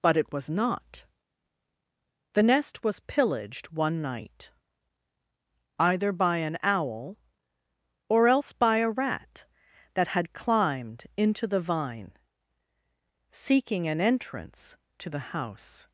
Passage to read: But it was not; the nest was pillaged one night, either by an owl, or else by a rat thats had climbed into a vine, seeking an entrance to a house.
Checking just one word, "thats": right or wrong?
wrong